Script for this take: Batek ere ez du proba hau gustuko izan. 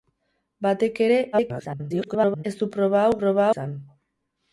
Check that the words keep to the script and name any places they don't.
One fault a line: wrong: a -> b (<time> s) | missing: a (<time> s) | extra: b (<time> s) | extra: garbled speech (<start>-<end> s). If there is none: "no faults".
extra: garbled speech (1.3-2.4 s)
wrong: gustuko -> proba (3.2 s)